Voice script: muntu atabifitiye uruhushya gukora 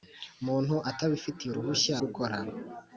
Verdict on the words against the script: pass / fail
pass